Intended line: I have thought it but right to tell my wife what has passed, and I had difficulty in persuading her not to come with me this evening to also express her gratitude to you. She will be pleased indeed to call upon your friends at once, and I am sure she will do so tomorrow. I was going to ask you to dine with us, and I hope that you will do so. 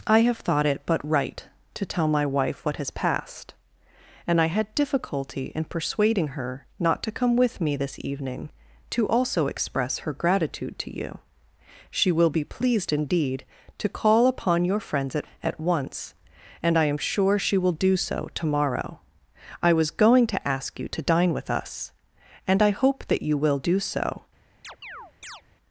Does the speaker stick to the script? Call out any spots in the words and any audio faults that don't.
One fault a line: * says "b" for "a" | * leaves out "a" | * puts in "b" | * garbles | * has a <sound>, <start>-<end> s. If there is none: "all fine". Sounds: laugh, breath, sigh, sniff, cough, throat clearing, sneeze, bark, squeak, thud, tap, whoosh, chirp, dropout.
* puts in "at"
* has a chirp, 24.6-25.4 s